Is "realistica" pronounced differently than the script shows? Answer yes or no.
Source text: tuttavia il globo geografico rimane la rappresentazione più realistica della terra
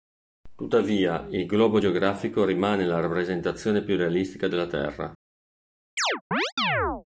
no